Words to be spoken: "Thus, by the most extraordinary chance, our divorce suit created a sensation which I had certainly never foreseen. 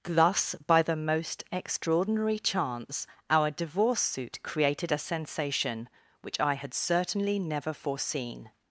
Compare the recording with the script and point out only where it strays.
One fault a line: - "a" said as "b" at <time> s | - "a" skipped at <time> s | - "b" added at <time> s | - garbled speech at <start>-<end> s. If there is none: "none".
none